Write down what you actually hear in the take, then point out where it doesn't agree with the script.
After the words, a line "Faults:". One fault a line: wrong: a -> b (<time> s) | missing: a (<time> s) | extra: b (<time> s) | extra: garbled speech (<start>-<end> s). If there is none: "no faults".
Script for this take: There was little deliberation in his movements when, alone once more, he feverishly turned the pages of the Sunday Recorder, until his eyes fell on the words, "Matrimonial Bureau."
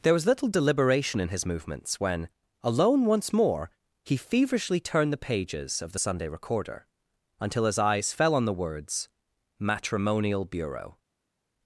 There was little deliberation in his movements when, alone once more, he feverishly turned the pages of the Sunday Recorder, until his eyes fell on the words, "Matrimonial Bureau."
Faults:
no faults